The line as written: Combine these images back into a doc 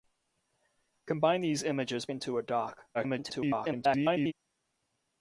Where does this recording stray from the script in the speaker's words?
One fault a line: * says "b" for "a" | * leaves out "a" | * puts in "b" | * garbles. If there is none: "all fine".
* leaves out "back"
* garbles